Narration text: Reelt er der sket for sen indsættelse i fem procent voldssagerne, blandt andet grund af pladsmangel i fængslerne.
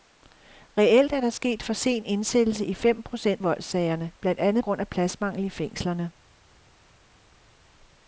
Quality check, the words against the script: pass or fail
pass